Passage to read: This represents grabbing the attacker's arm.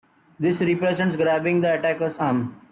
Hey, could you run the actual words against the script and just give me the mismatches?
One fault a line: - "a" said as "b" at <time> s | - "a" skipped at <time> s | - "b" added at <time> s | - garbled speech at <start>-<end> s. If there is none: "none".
none